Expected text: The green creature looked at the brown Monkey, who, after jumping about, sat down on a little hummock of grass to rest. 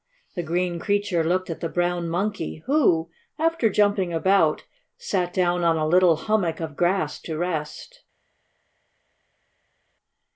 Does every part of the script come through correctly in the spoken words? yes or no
yes